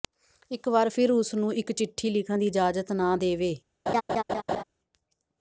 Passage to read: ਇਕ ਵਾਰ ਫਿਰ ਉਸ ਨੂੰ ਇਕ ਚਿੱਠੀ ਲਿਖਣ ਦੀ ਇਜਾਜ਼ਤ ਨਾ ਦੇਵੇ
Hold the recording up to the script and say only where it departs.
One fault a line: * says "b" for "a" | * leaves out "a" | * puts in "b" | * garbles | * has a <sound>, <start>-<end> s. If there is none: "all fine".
* has a laugh, 3.9-4.6 s